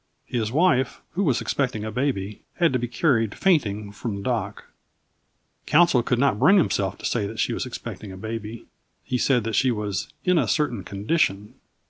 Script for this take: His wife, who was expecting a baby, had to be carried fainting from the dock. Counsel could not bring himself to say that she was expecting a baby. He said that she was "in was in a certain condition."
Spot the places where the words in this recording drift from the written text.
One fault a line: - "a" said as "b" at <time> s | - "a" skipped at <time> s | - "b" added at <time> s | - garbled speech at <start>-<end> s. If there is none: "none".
- "was in" skipped at 10.4 s